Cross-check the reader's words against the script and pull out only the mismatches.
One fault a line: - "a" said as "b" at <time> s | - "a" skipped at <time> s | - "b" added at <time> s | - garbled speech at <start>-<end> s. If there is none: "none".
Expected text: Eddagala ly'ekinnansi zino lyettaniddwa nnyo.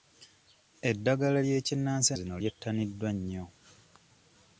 none